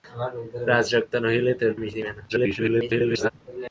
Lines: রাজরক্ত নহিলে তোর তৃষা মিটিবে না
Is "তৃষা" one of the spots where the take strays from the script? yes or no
yes